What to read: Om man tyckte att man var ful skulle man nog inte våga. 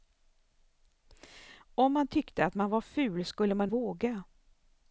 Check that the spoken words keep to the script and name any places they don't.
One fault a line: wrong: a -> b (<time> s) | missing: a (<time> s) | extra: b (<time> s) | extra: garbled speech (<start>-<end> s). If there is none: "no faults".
missing: nog inte (3.7 s)